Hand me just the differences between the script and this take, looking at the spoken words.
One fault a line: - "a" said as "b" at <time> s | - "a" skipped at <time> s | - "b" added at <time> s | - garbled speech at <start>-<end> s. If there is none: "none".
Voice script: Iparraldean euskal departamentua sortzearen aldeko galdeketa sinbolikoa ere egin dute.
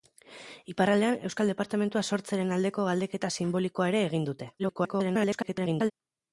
- garbled speech at 4.6-5.9 s